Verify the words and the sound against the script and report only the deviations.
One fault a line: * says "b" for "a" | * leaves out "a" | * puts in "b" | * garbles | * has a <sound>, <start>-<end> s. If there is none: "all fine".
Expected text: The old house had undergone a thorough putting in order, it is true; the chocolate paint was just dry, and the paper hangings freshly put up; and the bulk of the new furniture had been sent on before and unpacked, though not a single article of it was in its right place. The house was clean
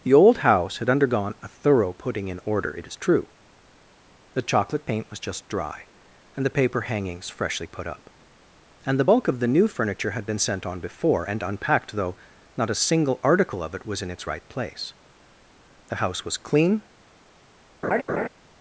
* has a laugh, 17.8-18.3 s